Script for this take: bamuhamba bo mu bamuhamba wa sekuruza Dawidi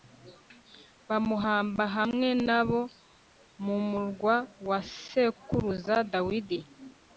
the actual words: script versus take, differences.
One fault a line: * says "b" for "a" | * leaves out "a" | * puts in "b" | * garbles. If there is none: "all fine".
* puts in "hamwe na"
* says "murwa" for "bamuhamba"